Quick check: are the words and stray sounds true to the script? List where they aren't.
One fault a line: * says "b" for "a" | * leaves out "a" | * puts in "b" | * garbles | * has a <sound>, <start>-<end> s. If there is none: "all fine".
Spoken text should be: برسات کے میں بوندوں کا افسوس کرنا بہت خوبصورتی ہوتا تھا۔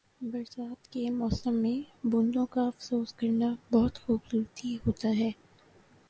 * puts in "موسم"
* says "ہے" for "تھا"